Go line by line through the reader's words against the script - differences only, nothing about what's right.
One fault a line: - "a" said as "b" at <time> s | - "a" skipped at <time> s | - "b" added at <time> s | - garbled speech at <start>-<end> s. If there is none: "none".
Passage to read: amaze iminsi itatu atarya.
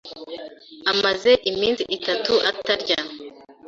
none